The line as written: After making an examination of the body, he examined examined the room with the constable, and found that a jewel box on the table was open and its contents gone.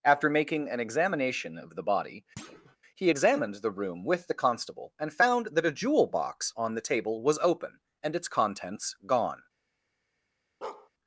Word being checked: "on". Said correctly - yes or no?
yes